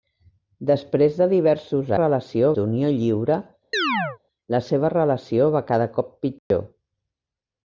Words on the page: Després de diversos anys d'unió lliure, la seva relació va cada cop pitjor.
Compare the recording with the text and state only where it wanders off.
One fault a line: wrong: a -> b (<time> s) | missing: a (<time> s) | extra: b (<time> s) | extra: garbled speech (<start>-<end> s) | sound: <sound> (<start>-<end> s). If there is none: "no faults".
wrong: anys -> relació (2.0 s)
sound: chirp (3.7-4.2 s)
sound: dropout (6.4-6.5 s)